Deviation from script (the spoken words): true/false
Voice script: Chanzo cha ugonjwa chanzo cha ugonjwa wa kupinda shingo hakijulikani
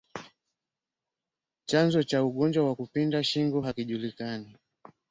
true